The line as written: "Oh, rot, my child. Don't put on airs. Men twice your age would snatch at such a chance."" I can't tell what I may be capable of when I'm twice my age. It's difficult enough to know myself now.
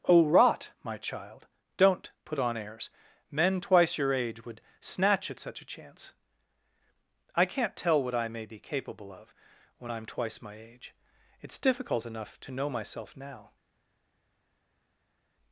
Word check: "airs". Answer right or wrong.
right